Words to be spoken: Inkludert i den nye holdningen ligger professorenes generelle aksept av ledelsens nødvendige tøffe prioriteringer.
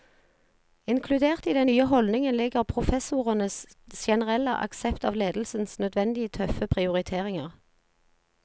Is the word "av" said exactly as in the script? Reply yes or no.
yes